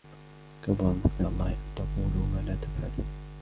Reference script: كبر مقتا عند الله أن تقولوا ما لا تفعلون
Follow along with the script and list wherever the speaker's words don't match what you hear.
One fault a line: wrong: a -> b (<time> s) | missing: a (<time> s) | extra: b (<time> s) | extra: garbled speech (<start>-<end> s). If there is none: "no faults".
missing: عند (1.2 s)